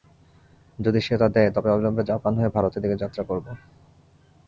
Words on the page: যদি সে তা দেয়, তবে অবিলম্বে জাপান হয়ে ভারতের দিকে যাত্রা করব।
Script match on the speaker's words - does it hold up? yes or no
yes